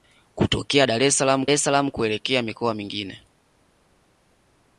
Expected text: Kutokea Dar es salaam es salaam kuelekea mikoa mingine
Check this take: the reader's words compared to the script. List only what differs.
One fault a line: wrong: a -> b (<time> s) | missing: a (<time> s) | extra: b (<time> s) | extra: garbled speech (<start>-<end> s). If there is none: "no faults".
no faults